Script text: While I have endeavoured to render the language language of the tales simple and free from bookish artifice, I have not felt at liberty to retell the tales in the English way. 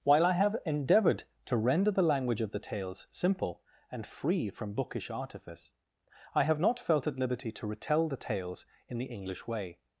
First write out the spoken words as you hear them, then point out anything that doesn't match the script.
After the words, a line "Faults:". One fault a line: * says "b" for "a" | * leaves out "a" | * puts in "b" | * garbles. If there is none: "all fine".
While I have endeavoured to render the language of the tales simple and free from bookish artifice, I have not felt at liberty to retell the tales in the English way.
Faults:
* leaves out "language"